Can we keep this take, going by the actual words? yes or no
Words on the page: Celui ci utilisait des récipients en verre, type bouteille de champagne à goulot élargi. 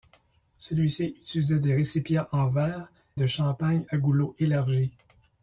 no